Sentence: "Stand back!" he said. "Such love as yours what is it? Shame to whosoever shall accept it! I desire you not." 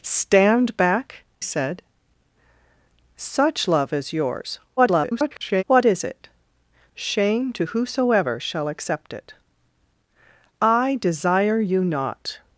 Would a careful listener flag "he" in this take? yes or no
yes